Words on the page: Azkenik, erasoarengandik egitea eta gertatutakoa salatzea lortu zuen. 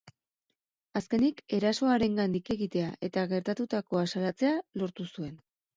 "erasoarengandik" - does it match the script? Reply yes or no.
yes